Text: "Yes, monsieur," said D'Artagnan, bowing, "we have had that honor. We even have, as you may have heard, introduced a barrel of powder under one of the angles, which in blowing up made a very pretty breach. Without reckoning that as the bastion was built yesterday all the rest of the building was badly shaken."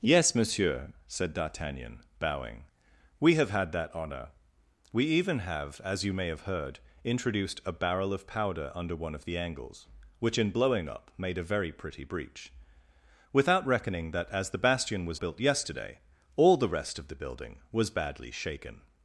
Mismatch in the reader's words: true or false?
false